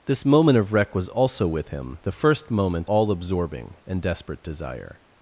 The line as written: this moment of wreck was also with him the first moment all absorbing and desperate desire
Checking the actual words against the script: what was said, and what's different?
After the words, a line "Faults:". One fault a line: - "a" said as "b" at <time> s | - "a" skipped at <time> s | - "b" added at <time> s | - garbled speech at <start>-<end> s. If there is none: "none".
this moment of wreck was also with him the first moment all absorbing and desperate desire
Faults:
none